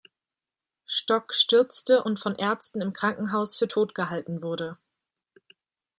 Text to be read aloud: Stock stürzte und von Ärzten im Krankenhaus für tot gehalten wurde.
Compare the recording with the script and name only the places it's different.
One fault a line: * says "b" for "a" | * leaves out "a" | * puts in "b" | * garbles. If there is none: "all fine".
all fine